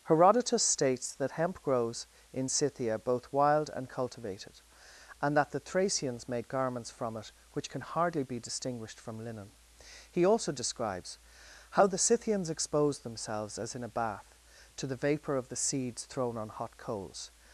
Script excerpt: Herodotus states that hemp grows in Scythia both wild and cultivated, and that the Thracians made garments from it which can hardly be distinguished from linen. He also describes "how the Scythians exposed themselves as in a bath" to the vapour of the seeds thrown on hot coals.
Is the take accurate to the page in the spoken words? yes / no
yes